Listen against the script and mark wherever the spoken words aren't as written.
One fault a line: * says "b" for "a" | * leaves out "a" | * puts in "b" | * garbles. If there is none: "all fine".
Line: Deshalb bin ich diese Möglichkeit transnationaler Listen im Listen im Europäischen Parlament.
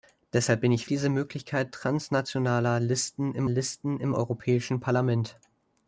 all fine